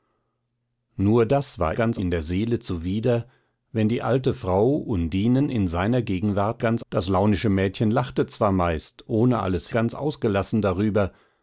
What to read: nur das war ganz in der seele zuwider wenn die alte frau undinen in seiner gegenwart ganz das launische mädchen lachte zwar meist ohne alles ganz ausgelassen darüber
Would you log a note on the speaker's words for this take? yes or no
no